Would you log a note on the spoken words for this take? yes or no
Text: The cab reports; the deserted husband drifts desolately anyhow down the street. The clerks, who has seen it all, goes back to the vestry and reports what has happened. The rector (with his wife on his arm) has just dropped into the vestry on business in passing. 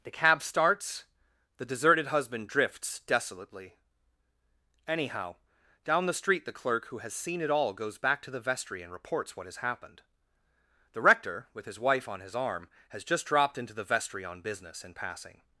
yes